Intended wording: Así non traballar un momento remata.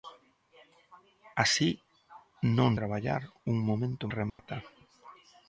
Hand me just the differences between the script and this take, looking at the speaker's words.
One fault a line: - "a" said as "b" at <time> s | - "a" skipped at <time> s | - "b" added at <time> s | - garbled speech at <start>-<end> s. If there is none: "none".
none